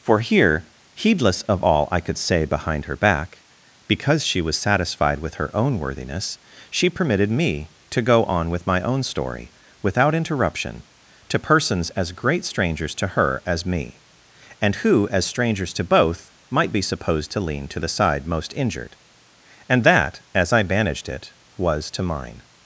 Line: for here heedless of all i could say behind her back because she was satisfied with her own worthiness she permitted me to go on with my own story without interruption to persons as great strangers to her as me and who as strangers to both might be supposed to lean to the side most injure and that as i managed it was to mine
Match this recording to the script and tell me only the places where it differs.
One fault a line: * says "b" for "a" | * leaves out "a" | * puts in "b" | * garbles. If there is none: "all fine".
* says "injured" for "injure"